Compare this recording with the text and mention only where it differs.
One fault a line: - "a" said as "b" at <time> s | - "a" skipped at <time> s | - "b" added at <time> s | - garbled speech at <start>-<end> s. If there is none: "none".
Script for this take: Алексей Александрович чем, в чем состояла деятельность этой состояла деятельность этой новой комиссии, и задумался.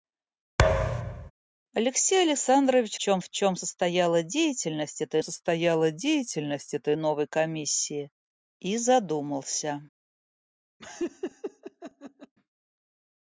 none